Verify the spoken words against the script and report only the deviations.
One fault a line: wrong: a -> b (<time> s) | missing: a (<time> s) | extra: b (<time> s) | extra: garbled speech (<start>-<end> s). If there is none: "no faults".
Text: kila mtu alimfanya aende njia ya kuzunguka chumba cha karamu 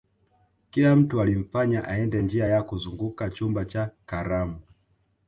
no faults